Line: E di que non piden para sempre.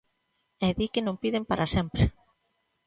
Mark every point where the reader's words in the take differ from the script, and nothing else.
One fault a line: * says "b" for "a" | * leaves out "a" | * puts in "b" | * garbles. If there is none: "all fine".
all fine